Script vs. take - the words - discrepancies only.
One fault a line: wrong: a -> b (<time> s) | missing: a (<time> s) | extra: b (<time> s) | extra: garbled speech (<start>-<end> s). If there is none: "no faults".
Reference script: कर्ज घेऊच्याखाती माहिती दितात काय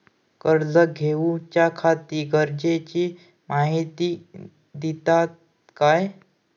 extra: गरजेची (2.3 s)